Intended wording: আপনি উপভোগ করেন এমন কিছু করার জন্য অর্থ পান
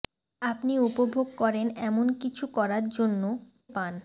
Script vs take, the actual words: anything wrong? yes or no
yes